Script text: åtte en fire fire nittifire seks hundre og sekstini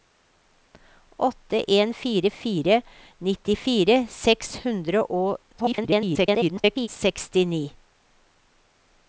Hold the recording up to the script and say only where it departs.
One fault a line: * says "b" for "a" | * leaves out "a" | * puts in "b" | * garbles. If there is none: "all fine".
* garbles